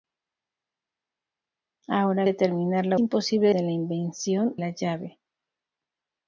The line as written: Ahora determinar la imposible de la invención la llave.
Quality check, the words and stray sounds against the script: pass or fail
pass